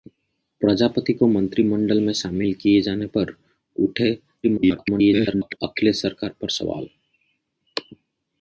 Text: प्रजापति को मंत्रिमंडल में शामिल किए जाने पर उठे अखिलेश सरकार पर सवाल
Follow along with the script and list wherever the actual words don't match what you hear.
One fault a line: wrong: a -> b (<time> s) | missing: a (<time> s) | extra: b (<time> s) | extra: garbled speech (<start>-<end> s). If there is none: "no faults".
extra: garbled speech (4.4-5.6 s)